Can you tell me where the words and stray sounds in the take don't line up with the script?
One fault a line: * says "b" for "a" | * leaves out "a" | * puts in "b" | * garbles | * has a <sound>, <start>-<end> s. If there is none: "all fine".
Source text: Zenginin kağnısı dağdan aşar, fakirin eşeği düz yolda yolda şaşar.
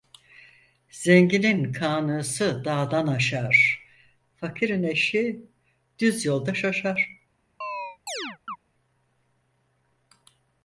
* leaves out "yolda"
* has a chirp, 7.6-8.6 s